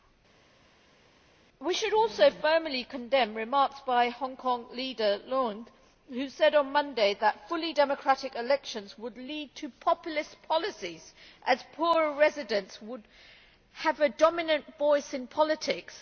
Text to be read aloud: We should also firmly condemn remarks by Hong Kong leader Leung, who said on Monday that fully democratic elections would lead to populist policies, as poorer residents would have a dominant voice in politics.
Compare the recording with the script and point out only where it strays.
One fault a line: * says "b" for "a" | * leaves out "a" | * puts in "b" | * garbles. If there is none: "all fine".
all fine